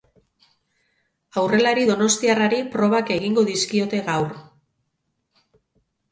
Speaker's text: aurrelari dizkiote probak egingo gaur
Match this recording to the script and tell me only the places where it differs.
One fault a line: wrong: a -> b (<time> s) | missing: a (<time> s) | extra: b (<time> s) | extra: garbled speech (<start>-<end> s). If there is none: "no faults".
wrong: dizkiote -> donostiarrari (1.9 s)
extra: dizkiote (3.5 s)